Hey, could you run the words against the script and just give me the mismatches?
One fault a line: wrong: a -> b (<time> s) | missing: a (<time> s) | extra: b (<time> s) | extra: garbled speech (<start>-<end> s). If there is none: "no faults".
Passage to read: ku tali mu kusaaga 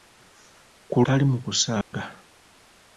no faults